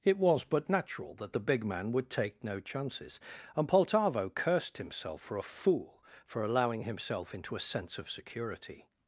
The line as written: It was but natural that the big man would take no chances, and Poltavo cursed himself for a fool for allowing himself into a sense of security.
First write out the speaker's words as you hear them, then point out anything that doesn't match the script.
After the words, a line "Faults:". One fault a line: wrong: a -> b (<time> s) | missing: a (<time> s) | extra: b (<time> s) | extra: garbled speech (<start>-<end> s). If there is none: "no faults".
It was but natural that the big man would take no chances, and Poltavo cursed himself for a fool for allowing himself into a sense of security.
Faults:
no faults